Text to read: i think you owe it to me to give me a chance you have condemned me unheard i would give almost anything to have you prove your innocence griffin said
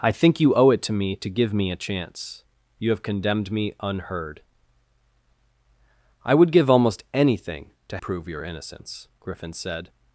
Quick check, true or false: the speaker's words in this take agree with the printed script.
false